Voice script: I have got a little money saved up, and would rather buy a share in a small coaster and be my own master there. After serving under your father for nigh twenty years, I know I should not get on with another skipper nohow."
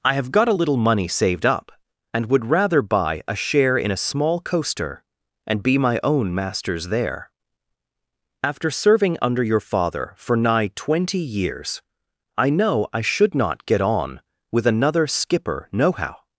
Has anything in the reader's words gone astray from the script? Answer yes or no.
yes